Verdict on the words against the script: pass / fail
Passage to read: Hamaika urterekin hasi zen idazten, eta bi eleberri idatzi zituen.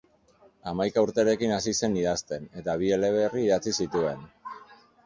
pass